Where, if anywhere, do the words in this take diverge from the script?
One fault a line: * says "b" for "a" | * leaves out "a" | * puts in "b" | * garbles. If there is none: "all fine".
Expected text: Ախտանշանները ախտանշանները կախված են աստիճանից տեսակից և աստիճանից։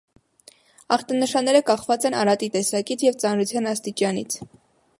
* leaves out "ախտանշանները"
* says "արատի" for "աստիճանից"
* puts in "ծանրության"